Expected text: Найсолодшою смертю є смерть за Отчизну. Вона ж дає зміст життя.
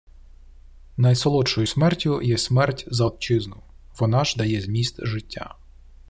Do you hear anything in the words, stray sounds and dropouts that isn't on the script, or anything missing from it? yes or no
no